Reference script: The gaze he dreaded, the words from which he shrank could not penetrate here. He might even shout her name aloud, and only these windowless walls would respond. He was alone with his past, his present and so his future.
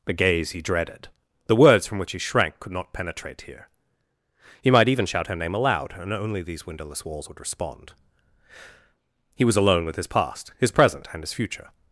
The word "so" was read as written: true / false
false